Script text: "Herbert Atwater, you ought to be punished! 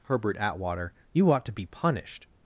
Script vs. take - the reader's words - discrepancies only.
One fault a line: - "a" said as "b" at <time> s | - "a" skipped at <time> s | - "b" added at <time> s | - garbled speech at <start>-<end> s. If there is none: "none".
none